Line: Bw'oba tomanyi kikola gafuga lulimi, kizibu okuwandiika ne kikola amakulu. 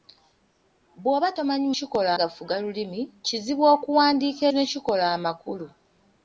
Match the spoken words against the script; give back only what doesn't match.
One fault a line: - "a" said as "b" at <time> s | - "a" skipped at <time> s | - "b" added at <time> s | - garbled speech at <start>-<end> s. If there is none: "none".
none